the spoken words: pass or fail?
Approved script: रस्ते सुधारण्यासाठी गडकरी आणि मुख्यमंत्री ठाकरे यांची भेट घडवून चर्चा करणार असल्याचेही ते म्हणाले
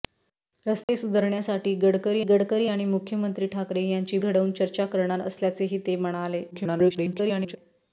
fail